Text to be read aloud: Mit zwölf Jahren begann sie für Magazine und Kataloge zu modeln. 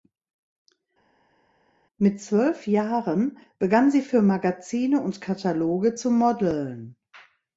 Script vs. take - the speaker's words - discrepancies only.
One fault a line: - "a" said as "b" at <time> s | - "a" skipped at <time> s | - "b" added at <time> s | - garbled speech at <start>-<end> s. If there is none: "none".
none